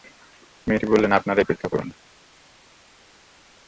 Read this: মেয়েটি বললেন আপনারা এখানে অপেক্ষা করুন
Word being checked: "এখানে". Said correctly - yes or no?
no